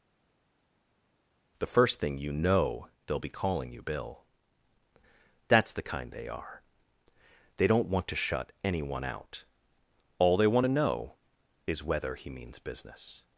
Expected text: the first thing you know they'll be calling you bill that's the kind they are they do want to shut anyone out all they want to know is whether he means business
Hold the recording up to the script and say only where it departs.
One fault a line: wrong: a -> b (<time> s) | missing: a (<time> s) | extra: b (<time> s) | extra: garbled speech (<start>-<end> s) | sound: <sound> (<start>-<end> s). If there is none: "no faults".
wrong: do -> don't (7.7 s)